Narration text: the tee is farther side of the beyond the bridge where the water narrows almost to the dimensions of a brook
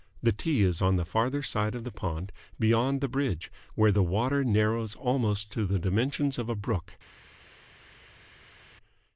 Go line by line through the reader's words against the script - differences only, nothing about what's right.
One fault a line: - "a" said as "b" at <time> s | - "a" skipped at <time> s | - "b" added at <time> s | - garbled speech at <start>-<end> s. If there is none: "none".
- "on the" added at 0.8 s
- "pond" added at 1.9 s